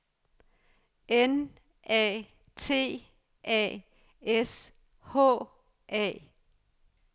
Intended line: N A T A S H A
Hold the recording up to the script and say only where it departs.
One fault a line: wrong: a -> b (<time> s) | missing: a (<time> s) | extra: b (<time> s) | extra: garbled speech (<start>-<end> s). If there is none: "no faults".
no faults